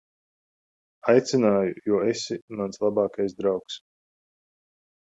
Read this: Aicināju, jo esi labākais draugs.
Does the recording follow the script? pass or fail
fail